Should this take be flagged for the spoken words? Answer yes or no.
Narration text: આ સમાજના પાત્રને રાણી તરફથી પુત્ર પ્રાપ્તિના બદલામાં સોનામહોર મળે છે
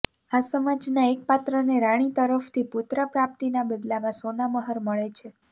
yes